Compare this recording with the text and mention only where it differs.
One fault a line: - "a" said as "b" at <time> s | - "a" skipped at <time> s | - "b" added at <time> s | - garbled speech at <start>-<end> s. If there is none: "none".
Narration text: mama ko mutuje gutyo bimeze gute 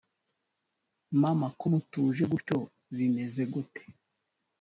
none